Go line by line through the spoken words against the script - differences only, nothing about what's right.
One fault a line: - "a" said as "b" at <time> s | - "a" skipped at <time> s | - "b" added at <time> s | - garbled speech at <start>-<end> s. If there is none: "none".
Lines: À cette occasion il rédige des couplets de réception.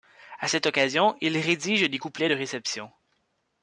none